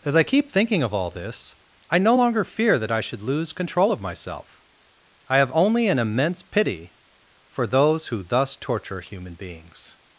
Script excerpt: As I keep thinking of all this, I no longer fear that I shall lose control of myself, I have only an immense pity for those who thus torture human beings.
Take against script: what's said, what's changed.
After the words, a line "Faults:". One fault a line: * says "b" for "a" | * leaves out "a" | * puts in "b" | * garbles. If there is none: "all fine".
As I keep thinking of all this, I no longer fear that I should lose control of myself, I have only an immense pity for those who thus torture human beings.
Faults:
* says "should" for "shall"